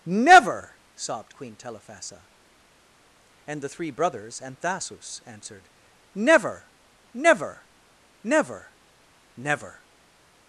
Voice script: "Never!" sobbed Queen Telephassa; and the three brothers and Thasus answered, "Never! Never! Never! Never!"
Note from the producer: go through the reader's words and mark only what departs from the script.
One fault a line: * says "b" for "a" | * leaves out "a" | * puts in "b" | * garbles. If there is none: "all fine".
all fine